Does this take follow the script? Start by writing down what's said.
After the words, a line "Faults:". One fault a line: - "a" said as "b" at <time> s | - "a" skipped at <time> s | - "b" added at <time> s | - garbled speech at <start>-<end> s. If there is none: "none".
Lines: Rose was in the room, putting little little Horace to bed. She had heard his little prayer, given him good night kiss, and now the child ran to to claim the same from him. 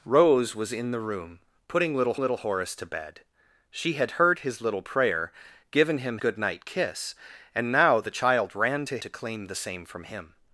Rose was in the room, putting little little Horace to bed. She had heard his little prayer, given him good night kiss, and now the child ran to to claim the same from him.
Faults:
none